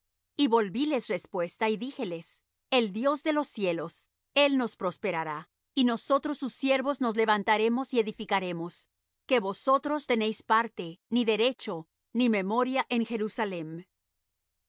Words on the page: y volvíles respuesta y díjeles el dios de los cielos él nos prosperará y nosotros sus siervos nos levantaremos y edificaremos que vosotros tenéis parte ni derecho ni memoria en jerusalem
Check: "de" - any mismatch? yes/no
no